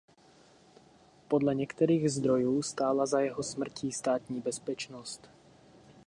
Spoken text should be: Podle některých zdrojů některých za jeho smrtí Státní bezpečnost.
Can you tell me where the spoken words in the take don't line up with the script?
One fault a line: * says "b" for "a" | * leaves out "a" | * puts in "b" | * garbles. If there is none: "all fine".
* says "stála" for "některých"